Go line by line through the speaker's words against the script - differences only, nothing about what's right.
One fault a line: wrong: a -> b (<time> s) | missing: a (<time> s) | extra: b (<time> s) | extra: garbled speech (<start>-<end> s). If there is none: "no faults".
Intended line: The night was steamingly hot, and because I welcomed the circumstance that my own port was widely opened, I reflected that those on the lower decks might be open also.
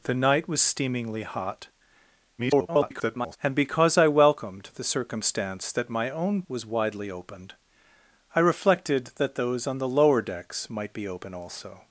extra: garbled speech (2.4-3.4 s)
missing: port (6.4 s)